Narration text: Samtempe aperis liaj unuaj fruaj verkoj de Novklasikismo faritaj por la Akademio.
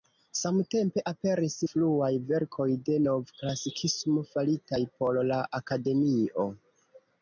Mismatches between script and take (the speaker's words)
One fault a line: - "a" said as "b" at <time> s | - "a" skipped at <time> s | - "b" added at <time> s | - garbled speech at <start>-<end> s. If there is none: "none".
- "liaj unuaj" skipped at 1.6 s